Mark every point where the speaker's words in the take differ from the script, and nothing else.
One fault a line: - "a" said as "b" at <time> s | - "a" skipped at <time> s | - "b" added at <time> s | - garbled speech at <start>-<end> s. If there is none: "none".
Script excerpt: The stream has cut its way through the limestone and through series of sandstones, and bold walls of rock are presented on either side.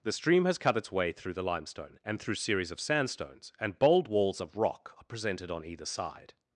none